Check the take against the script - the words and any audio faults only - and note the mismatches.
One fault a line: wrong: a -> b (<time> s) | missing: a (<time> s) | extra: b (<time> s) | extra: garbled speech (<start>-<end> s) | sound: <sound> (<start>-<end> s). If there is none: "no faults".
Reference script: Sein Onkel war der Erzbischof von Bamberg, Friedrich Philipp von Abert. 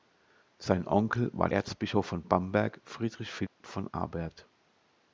missing: der (1.5 s)
sound: dropout (3.5-3.6 s)